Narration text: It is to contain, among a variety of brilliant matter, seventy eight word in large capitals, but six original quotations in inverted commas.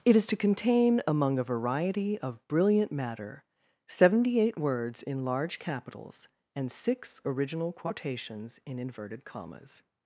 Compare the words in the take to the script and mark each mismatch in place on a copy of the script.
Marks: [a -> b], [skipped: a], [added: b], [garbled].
It is to contain, among a variety of brilliant matter, seventy eight [word -> words] in large capitals, [but -> and] six original quotations in inverted commas.